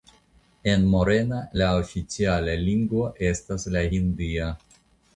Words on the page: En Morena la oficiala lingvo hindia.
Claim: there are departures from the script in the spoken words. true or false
true